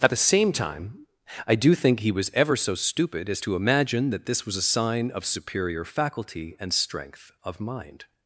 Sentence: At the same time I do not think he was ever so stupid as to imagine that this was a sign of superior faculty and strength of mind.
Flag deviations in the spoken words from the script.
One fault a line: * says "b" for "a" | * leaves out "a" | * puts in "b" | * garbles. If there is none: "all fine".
* leaves out "not"